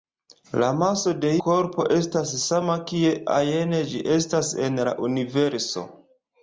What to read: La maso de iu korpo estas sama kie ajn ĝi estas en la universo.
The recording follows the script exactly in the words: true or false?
false